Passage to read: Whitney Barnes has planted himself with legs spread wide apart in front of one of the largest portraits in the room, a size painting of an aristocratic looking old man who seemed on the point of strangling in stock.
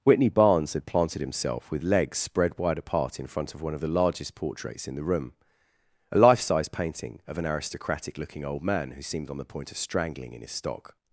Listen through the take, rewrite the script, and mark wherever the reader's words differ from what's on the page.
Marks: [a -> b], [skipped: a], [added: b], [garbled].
Whitney Barnes [has -> had] planted himself with legs spread wide apart in front of one of the largest portraits in the room, a [added: life] size painting of an aristocratic looking old man who seemed on the point of strangling in [added: his] stock.